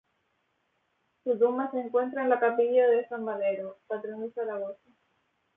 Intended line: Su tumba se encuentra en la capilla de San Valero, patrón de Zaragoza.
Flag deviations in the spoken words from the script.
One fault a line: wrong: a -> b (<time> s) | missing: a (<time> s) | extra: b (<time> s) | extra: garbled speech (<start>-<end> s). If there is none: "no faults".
no faults